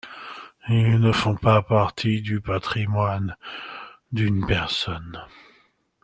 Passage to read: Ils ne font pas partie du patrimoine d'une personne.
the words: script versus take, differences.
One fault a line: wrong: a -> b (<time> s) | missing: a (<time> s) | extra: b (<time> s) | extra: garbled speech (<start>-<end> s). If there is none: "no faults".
no faults